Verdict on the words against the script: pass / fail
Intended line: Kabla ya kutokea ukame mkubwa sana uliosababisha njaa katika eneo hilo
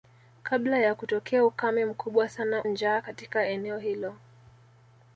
fail